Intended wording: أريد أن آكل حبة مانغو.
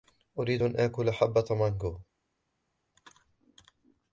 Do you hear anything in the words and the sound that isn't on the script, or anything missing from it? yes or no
no